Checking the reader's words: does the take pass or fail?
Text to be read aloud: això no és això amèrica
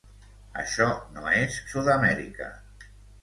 fail